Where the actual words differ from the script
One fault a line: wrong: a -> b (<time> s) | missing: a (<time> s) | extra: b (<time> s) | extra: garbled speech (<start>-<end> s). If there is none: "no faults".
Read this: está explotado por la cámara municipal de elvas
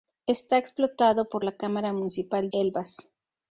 missing: de (2.5 s)